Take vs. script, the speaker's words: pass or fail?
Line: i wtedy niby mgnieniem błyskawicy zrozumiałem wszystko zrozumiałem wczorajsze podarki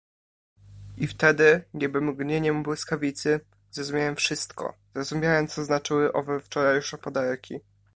fail